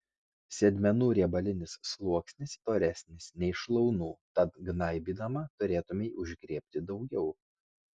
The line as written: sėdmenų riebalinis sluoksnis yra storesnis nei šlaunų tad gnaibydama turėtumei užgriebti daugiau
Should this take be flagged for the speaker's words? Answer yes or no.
yes